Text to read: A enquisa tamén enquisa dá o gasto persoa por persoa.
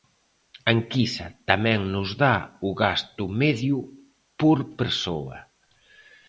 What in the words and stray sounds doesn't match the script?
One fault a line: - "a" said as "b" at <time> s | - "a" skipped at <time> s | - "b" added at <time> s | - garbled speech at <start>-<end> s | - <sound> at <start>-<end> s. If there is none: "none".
- "enquisa" said as "nos" at 1.9 s
- "persoa" said as "medio" at 3.4 s